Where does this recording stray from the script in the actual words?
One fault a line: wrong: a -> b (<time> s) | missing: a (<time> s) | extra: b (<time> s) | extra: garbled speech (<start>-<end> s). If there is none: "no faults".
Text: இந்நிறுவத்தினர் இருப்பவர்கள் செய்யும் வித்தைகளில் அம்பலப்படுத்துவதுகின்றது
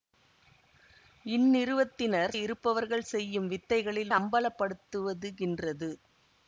no faults